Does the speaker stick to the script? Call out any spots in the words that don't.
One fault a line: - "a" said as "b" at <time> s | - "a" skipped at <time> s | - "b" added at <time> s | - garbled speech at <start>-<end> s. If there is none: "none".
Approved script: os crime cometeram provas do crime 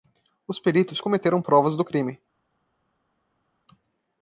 - "crime" said as "peritos" at 0.6 s